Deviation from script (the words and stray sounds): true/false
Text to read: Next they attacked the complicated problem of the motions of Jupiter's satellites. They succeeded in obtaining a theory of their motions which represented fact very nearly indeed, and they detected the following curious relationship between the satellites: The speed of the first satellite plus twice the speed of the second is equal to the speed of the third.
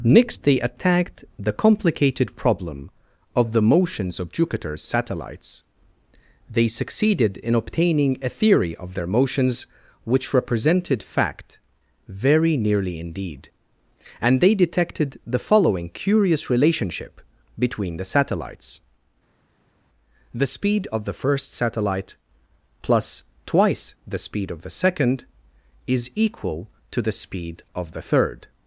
false